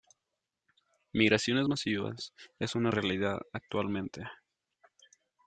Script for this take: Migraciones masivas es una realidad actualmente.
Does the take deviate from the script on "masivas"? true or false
false